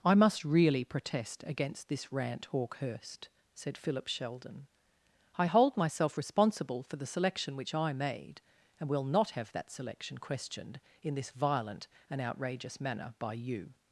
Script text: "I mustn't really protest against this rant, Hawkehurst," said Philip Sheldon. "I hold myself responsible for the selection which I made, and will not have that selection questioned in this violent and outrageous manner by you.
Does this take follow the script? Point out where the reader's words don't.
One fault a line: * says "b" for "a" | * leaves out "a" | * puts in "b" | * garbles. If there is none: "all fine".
* says "must" for "mustn't"